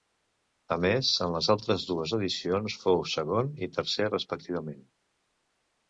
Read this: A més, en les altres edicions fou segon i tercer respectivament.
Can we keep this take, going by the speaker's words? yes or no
no